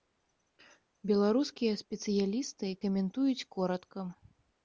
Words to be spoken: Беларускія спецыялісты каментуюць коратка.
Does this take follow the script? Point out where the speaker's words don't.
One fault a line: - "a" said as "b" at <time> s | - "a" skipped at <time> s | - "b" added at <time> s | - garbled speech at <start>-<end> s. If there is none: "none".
none